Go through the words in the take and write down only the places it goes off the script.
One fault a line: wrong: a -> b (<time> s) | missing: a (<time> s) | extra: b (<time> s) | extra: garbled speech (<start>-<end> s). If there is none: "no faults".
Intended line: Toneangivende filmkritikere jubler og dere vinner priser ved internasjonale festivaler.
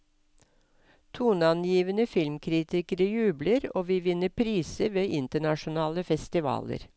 wrong: dere -> vi (3.9 s)